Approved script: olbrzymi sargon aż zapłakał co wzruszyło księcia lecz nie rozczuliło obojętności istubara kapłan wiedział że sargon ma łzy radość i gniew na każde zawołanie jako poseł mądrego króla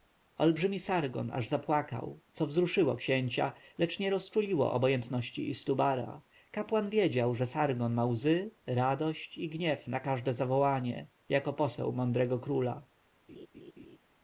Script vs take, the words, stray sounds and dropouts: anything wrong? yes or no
yes